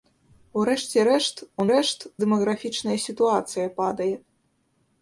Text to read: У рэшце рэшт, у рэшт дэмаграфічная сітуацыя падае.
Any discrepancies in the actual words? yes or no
no